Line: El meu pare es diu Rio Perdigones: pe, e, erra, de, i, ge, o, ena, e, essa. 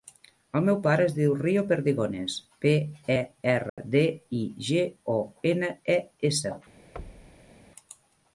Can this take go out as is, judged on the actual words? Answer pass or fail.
pass